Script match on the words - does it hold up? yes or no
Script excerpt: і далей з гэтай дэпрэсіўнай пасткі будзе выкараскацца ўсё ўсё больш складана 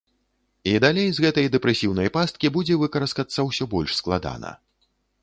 no